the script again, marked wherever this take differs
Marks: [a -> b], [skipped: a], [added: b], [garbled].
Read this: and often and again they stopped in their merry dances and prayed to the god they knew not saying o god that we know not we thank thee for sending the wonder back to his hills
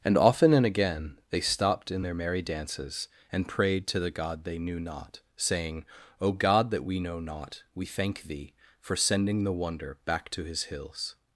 and often and again they stopped in their merry dances and prayed to the god they knew not saying o god that we know not we thank thee for sending the wonder back to his hills